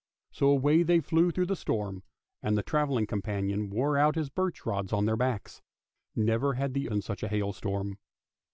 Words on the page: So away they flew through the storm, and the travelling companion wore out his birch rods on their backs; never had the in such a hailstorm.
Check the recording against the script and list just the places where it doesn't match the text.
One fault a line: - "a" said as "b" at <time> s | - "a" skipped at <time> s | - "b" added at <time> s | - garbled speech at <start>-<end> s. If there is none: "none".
none